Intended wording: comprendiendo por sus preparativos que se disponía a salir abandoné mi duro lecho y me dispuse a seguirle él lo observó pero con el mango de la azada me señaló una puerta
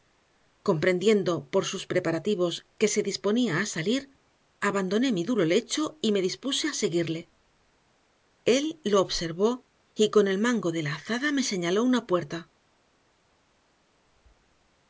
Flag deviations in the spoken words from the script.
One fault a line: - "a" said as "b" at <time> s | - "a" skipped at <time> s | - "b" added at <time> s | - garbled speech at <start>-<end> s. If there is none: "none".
- "pero" said as "y" at 9.9 s